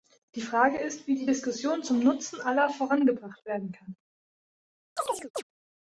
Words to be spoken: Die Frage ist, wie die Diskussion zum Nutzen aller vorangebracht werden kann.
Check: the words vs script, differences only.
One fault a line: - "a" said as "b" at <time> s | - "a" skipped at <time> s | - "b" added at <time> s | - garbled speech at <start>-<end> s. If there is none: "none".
none